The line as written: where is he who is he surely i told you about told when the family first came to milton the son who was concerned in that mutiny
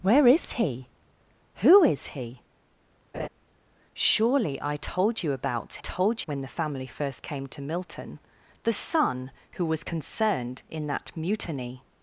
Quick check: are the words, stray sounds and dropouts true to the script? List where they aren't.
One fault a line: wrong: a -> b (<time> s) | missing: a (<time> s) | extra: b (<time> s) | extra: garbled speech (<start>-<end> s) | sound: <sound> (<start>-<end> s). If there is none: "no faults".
sound: laugh (3.1-3.3 s)